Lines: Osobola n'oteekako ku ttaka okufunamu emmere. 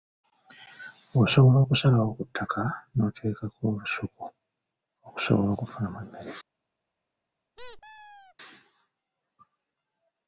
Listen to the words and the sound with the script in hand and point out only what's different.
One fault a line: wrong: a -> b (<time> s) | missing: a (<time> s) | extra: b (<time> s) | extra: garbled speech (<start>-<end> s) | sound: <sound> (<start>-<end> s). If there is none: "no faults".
wrong: n'oteekako -> okusalawo (1.6 s)
extra: n'oteekako olusuku okusobola (2.9 s)
sound: squeak (7.6-8.3 s)